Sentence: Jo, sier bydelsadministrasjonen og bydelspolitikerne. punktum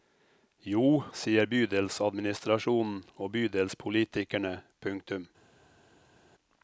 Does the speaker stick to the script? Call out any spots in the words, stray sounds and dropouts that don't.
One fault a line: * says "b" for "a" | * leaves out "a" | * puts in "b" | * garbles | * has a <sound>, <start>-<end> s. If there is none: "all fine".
all fine